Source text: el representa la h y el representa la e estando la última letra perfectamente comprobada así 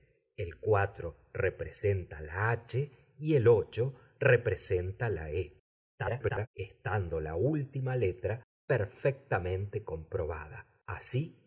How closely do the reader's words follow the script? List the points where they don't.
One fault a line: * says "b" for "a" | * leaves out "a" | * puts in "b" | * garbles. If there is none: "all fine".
* garbles